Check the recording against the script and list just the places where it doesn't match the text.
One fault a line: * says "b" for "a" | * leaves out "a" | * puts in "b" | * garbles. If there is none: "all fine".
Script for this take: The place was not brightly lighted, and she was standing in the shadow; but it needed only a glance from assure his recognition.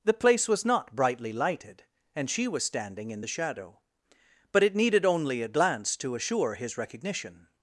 * says "to" for "from"